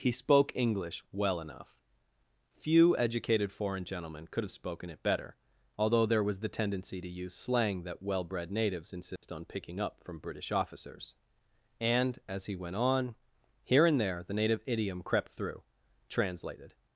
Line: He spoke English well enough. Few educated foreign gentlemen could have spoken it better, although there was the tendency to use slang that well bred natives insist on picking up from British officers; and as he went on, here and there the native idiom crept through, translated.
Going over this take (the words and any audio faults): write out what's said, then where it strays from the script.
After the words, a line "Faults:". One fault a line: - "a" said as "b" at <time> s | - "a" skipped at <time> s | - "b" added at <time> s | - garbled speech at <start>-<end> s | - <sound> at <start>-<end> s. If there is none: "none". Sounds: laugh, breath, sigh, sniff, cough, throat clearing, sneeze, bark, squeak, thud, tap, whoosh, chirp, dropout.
He spoke English well enough. Few educated foreign gentlemen could have spoken it better, although there was the tendency to use slang that well bred natives insist on picking up from British officers; and as he went on, here and there the native idiom crept through, translated.
Faults:
- dropout at 9.2-9.2 s